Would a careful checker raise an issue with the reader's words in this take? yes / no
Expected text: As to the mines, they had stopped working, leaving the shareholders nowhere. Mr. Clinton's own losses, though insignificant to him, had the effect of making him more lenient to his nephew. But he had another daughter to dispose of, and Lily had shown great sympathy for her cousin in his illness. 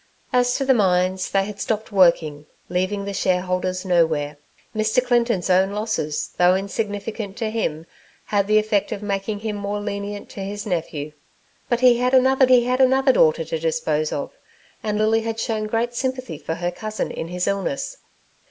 yes